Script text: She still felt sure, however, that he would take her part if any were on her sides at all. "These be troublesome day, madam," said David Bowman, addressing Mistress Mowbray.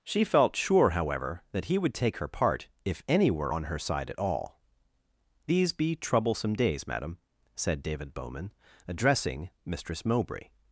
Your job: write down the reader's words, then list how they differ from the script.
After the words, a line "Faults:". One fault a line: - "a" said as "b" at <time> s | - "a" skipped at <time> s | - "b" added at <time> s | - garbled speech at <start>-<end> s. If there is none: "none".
She felt sure, however, that he would take her part if any were on her side at all. "These be troublesome days, madam," said David Bowman, addressing Mistress Mowbray.
Faults:
- "still" skipped at 0.2 s
- "sides" said as "side" at 3.8 s
- "day" said as "days" at 6.5 s